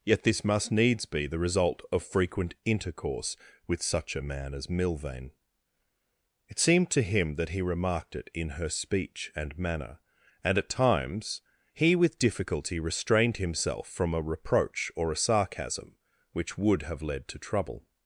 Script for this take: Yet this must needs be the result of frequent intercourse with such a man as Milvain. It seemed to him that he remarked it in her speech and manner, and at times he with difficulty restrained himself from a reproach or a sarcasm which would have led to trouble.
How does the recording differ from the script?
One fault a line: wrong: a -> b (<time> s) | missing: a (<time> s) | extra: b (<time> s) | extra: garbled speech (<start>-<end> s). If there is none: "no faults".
no faults